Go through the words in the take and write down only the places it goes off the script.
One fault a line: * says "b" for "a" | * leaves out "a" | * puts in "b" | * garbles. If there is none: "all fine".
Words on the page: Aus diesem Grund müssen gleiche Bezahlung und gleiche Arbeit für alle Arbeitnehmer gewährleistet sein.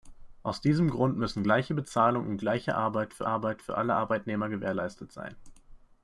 * puts in "Arbeit für"